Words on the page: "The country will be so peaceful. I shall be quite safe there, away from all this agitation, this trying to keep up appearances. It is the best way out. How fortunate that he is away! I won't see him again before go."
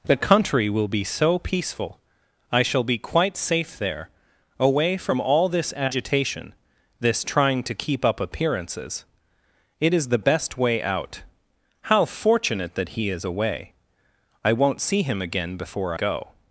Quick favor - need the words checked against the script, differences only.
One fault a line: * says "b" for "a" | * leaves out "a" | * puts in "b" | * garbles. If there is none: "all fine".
all fine